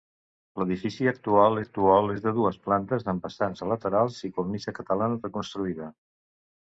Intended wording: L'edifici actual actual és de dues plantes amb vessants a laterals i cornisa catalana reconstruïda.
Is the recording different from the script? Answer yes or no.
no